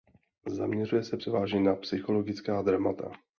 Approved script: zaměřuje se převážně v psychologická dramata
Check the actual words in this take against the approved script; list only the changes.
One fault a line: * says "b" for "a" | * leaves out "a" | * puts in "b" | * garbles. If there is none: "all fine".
* says "na" for "v"